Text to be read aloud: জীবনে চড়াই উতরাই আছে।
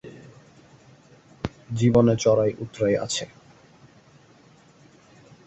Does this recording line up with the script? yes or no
yes